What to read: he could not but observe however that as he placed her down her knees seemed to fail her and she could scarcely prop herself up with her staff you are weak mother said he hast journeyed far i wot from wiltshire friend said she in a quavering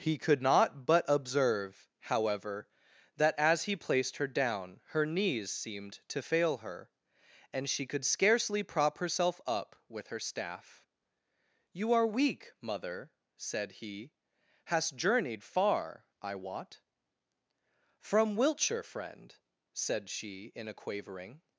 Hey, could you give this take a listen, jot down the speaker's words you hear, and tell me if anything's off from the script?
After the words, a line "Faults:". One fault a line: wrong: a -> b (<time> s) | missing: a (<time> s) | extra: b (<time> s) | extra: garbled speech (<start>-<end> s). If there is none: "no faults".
he could not but observe however that as he placed her down her knees seemed to fail her and she could scarcely prop herself up with her staff you are weak mother said he hast journeyed far i wot from wiltshire friend said she in a quavering
Faults:
no faults